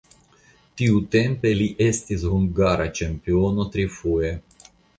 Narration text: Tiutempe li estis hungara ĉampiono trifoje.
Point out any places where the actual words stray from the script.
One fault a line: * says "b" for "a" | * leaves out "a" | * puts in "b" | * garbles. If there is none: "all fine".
all fine